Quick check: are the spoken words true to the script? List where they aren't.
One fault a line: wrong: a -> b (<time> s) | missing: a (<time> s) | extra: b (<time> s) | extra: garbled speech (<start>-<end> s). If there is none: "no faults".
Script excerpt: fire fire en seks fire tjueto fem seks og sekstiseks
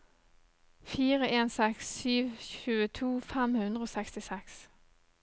missing: fire (1.3 s)
wrong: fire -> sju (2.0 s)
wrong: seks -> hundre (3.6 s)